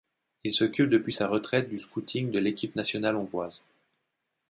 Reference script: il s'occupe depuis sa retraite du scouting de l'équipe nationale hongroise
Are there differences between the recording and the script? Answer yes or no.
no